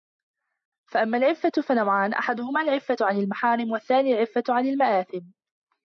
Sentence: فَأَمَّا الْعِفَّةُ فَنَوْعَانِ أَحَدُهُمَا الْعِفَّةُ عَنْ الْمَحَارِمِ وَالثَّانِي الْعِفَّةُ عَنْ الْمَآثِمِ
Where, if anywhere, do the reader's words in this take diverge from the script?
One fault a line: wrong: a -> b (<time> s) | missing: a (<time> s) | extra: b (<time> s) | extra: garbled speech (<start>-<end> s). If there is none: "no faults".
no faults